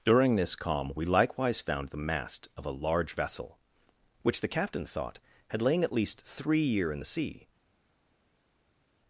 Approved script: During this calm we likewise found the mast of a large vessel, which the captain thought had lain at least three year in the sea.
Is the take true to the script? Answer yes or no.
yes